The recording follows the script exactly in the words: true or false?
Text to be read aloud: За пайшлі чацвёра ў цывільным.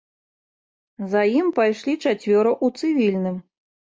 false